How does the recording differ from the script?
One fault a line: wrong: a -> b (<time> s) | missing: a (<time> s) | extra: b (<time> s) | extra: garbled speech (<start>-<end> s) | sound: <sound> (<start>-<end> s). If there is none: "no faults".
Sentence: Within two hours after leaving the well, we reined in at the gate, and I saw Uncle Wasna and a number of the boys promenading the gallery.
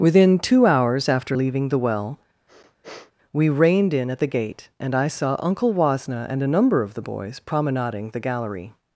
sound: sniff (2.5-3.1 s)